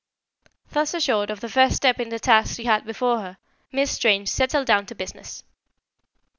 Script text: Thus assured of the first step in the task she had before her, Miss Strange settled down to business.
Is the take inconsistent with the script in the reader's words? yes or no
no